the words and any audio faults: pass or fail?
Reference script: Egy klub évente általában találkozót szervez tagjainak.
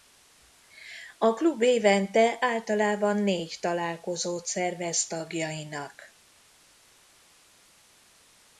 fail